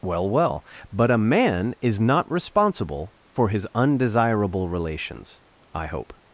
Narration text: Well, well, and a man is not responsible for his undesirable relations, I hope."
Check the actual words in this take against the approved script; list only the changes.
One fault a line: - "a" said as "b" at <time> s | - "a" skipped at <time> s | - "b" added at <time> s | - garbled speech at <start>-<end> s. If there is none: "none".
- "and" said as "but" at 0.9 s